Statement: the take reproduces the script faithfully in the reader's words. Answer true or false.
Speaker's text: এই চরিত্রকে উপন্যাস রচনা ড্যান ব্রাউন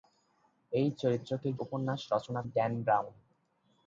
true